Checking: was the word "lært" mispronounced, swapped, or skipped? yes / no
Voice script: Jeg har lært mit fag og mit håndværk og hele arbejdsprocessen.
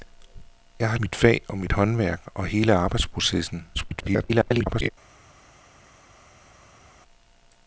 yes